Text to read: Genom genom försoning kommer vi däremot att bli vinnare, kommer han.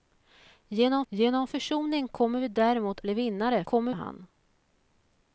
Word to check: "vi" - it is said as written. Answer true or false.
true